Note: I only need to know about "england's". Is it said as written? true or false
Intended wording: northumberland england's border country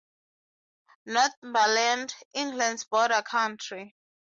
true